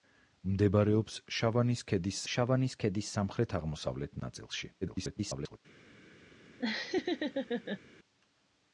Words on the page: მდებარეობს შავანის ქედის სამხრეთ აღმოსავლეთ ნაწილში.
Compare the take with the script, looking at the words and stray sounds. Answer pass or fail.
fail